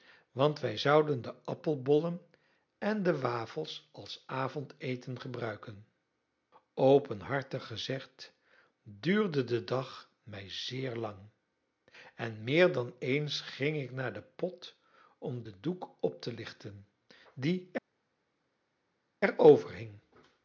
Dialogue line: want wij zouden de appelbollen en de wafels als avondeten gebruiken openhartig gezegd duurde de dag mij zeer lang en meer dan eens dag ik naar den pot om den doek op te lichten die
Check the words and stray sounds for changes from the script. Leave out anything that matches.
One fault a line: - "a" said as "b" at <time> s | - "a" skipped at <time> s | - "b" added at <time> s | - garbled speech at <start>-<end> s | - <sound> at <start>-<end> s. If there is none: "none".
- "dag" said as "ging" at 13.4 s